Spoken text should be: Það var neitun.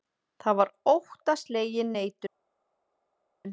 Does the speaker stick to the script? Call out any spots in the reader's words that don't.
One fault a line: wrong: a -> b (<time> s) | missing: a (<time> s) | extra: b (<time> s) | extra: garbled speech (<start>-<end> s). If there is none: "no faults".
extra: óttaslegin (0.9 s)